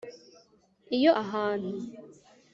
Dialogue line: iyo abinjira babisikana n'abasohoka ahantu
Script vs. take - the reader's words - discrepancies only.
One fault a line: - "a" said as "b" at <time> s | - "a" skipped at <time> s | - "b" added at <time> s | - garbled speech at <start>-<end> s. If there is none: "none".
- "abinjira babisikana n'abasohoka" skipped at 1.1 s